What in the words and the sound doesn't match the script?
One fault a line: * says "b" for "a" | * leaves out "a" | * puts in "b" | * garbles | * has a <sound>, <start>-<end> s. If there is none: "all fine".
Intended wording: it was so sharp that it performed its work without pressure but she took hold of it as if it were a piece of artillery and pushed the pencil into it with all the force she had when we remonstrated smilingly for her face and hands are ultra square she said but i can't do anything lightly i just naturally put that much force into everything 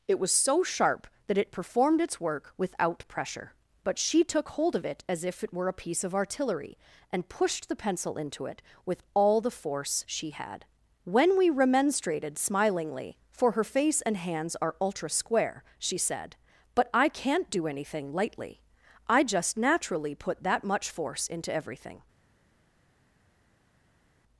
all fine